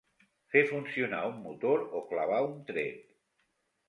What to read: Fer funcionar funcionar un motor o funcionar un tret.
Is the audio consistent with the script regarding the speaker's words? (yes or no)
no